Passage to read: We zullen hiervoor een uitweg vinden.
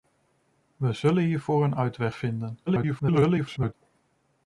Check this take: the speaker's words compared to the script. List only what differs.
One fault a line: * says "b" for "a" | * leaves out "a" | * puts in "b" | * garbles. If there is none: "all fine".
* garbles